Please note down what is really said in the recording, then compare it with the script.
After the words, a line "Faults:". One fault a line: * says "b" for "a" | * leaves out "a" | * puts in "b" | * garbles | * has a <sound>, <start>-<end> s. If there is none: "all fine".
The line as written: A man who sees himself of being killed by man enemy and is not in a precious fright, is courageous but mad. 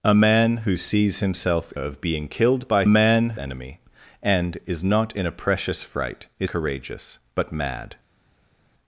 A man who sees himself of being killed by man enemy and is not in a precious fright, is courageous but mad.
Faults:
all fine